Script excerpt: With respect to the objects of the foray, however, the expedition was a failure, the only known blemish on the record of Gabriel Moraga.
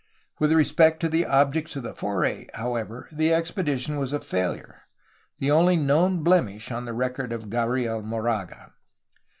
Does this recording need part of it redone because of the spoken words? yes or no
no